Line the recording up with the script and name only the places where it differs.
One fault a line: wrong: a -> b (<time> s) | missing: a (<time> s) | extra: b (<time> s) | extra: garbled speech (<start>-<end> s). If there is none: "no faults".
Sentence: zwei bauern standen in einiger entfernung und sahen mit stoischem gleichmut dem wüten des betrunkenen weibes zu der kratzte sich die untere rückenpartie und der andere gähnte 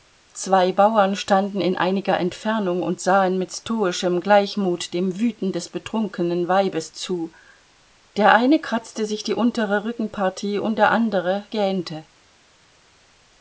extra: eine (8.3 s)